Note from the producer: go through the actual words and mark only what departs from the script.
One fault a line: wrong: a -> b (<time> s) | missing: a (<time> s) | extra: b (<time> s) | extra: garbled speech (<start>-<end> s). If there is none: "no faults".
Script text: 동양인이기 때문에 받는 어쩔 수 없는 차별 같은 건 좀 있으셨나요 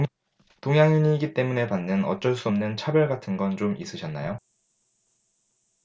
no faults